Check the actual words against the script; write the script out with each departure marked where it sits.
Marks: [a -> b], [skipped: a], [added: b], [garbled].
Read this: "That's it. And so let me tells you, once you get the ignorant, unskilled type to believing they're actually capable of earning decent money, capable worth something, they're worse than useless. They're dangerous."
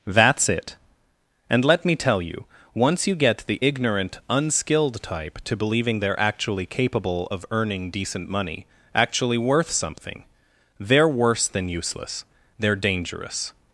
"That's it. And [skipped: so] let me [tells -> tell] you, once you get the ignorant, unskilled type to believing they're actually capable of earning decent money, [capable -> actually] worth something, they're worse than useless. They're dangerous."